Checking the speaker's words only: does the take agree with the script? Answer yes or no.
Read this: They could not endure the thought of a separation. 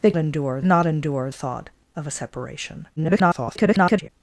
no